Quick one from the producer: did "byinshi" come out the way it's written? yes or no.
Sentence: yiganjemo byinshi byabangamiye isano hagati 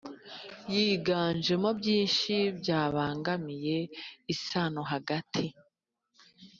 yes